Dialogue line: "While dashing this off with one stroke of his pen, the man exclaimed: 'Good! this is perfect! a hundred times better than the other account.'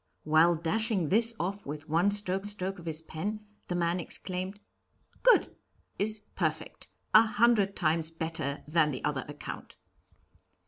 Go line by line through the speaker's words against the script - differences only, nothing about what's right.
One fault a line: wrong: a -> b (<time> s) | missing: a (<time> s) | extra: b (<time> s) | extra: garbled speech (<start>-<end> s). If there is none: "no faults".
extra: stroke (2.4 s)
missing: this (5.5 s)